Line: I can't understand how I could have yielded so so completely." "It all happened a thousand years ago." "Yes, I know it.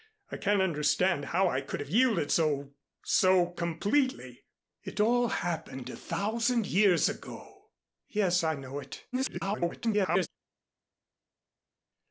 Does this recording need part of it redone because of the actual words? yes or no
yes